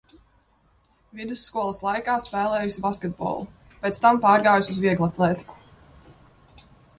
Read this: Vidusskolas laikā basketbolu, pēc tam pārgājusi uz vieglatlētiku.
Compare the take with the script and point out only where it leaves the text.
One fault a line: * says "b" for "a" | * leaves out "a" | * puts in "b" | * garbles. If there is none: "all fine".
* puts in "spēlējusi"